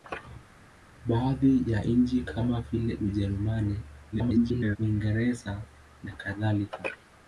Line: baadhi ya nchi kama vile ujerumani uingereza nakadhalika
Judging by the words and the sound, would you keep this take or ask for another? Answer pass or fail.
fail